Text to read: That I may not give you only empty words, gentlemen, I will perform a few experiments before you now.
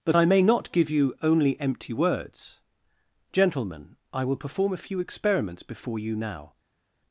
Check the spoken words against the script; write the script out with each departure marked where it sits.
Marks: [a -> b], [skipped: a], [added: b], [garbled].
That I may not give you only empty words, gentlemen, I will perform a few experiments before you now.